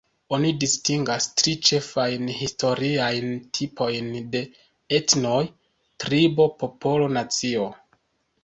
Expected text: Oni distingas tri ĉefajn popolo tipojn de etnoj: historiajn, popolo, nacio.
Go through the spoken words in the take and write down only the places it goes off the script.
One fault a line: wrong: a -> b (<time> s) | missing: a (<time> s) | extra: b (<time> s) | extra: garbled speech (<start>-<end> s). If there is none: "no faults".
wrong: popolo -> historiajn (2.4 s)
wrong: historiajn -> tribo (6.0 s)